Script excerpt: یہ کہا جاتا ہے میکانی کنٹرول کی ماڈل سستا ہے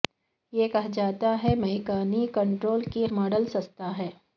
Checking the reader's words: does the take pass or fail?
pass